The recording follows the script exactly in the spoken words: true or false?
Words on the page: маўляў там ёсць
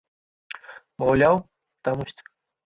true